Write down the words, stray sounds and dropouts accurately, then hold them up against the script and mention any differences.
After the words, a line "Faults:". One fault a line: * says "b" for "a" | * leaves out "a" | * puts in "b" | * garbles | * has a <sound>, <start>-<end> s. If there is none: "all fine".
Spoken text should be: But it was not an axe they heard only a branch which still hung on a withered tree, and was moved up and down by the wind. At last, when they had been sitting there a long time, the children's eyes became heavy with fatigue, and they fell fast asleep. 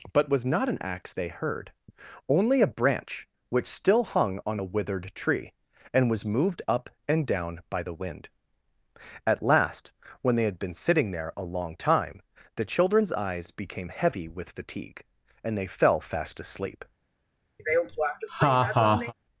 But was not an axe they heard only a branch which still hung on a withered tree, and was moved up and down by the wind. At last, when they had been sitting there a long time, the children's eyes became heavy with fatigue, and they fell fast asleep.
Faults:
* leaves out "it"
* has a laugh, 17.6-19.1 s